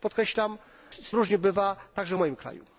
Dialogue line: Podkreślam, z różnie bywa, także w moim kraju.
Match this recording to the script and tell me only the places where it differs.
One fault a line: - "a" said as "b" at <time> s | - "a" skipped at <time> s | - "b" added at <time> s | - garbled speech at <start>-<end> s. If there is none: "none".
none